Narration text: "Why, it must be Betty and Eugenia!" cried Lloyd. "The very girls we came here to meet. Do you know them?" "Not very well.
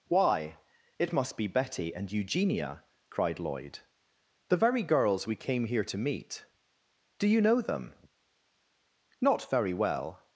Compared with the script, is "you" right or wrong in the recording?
right